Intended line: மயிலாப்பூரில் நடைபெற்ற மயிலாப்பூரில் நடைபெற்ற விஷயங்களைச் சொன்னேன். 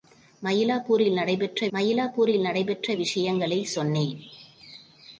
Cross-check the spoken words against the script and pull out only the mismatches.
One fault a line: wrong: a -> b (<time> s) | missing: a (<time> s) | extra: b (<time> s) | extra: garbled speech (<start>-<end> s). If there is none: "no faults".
no faults